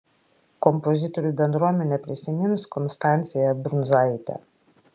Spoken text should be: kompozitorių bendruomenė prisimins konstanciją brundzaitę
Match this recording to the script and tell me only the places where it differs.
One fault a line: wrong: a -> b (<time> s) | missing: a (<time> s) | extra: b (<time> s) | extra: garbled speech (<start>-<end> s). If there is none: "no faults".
no faults